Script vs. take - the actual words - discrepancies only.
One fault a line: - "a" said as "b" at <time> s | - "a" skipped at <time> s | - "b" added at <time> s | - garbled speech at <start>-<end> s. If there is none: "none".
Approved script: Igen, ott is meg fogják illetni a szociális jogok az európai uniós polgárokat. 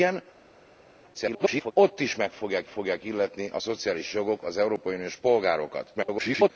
- garbled speech at 1.1-1.7 s
- "fogják" added at 2.7 s
- garbled speech at 5.9-6.5 s